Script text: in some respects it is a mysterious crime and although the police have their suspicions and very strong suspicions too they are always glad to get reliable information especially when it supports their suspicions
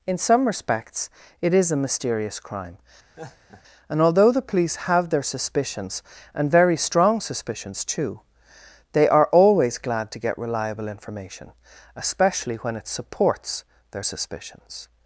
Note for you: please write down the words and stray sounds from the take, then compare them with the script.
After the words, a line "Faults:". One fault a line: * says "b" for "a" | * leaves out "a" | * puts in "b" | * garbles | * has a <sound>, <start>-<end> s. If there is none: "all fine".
in some respects it is a mysterious crime and although the police have their suspicions and very strong suspicions too they are always glad to get reliable information especially when it supports their suspicions
Faults:
* has a laugh, 3.2-3.6 s